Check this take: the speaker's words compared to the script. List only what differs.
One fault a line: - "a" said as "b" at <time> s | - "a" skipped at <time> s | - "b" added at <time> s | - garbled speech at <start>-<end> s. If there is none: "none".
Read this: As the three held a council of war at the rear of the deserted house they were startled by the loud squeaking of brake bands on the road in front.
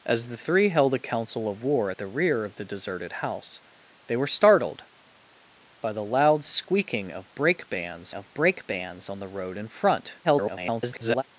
- "of brake bands" added at 8.1 s
- garbled speech at 10.2-11.2 s